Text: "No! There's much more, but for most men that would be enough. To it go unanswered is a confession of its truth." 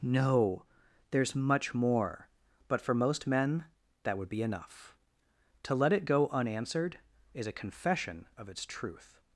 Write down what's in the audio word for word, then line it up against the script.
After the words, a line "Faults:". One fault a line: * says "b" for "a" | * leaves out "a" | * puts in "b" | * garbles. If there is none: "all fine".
"No! There's much more, but for most men that would be enough. To let it go unanswered is a confession of its truth."
Faults:
* puts in "let"